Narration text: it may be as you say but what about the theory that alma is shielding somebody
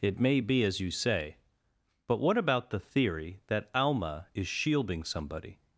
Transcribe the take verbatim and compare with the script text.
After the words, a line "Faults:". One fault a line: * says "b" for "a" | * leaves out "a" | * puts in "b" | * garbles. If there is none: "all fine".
it may be as you say but what about the theory that alma is shielding somebody
Faults:
all fine